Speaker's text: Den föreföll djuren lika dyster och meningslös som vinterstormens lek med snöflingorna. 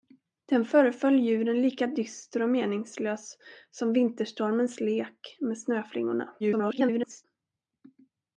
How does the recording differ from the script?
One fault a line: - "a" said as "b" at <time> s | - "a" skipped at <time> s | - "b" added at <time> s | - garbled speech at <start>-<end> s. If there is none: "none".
- garbled speech at 6.4-7.3 s